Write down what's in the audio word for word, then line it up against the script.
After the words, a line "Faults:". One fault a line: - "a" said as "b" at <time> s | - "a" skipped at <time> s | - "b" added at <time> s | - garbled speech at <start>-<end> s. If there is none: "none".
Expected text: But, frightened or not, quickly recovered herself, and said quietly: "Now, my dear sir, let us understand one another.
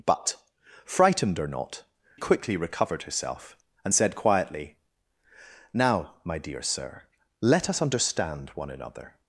But, frightened or not, quickly recovered herself, and said quietly: "Now, my dear sir, let us understand one another.
Faults:
none